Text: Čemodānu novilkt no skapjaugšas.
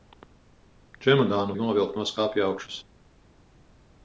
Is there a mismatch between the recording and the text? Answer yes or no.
no